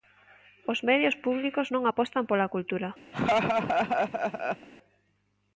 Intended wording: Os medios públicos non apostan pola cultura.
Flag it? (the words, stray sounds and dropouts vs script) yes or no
yes